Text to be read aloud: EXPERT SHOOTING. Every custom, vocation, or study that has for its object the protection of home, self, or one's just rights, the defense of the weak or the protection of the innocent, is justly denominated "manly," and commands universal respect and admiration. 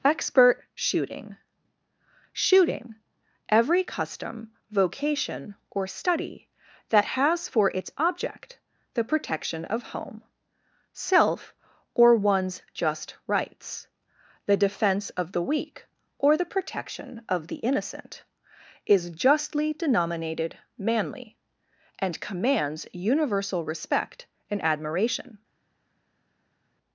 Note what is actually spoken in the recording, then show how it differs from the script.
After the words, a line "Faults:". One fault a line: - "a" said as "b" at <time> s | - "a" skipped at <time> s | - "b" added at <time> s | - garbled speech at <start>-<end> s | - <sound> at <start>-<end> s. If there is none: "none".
EXPERT SHOOTING SHOOTING. Every custom, vocation, or study that has for its object the protection of home, self, or one's just rights, the defense of the weak or the protection of the innocent, is justly denominated "manly," and commands universal respect and admiration.
Faults:
- "SHOOTING" added at 2.3 s